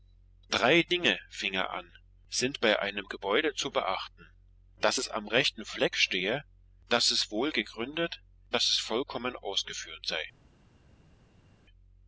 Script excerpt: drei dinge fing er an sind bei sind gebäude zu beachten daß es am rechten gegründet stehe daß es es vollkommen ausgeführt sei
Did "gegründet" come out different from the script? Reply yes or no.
yes